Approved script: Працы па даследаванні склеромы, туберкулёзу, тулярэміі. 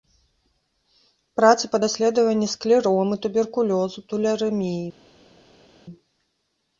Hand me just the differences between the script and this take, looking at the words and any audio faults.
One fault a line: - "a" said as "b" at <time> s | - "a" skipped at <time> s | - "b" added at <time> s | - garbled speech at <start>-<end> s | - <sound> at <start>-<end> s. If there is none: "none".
none